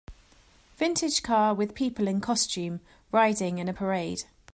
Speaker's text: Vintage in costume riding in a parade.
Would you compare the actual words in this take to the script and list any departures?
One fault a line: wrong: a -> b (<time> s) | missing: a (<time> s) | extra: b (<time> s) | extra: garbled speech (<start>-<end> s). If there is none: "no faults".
extra: car with people (1.2 s)